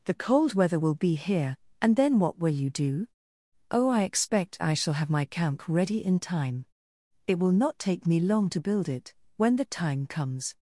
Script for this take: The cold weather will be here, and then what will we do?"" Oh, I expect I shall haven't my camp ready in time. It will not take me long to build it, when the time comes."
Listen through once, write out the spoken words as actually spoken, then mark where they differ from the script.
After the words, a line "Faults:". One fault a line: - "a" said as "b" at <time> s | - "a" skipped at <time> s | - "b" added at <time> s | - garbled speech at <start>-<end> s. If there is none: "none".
The cold weather will be here, and then what will you do?"" Oh, I expect I shall have my camp ready in time. It will not take me long to build it, when the time comes."
Faults:
- "we" said as "you" at 2.5 s
- "haven't" said as "have" at 4.9 s